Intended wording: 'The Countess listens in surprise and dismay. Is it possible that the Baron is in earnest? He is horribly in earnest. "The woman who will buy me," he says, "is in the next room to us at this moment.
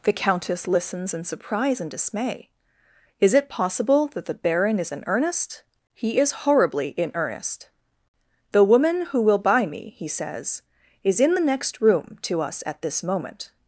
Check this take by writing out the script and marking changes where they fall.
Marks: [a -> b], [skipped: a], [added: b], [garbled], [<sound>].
'The Countess listens in surprise and dismay. Is it possible that the Baron is in earnest? He is horribly in earnest. "The woman who will buy me," he says, "is in the next room to us at this moment.